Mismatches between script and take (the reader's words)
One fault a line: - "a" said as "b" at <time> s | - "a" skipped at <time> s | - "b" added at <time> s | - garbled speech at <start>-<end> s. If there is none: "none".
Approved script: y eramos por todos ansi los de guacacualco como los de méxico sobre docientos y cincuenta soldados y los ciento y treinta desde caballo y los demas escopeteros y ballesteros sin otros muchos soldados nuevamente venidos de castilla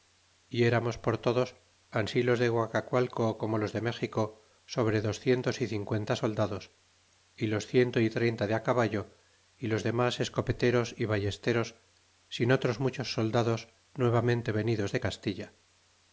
- "desde" said as "de" at 8.5 s